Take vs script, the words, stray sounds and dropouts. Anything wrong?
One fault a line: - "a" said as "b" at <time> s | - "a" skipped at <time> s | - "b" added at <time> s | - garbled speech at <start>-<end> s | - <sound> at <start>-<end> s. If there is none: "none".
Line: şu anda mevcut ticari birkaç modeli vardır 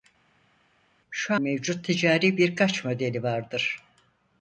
- "anda" skipped at 1.3 s